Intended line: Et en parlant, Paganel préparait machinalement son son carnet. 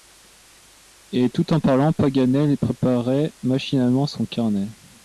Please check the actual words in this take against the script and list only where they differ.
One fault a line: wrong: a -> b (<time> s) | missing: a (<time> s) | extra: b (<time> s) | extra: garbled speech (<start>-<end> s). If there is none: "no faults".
extra: tout (1.3 s)
missing: son (4.3 s)